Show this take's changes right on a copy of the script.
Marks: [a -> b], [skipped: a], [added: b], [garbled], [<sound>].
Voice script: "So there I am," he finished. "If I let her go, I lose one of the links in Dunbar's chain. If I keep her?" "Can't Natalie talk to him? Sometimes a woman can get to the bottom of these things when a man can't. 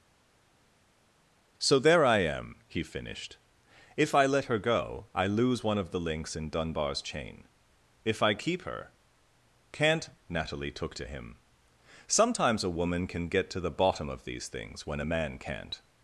"So there I am," he finished. "If I let her go, I lose one of the links in Dunbar's chain. If I keep her?" "Can't Natalie [talk -> took] to him? Sometimes a woman can get to the bottom of these things when a man can't.